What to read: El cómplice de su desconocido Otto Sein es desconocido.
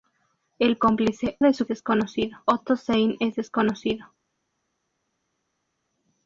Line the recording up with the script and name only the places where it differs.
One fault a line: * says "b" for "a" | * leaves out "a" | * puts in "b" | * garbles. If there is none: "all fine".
all fine